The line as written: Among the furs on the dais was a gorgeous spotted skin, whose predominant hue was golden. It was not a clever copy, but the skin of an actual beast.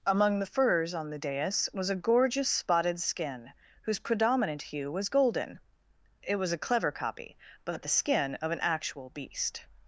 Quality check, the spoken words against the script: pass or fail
fail